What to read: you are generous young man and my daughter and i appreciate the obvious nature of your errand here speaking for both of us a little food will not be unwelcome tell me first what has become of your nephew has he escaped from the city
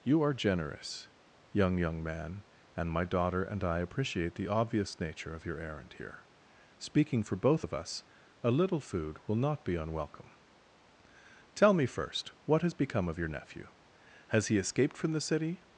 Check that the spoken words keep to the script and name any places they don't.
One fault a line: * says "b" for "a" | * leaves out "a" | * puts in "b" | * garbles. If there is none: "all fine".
* puts in "young"